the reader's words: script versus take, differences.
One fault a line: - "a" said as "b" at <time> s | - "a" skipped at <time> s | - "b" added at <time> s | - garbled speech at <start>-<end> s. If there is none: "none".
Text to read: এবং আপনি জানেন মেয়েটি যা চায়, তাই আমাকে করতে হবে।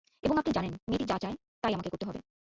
none